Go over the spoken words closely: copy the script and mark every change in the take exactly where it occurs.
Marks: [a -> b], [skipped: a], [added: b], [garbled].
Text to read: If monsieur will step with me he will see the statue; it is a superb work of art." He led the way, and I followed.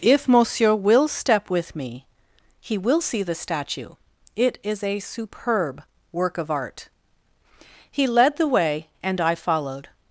If monsieur will step with me he will see the statue; it is a superb work of art." He led the way, and I followed.